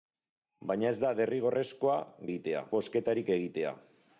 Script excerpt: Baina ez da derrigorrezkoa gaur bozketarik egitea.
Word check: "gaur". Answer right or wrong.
wrong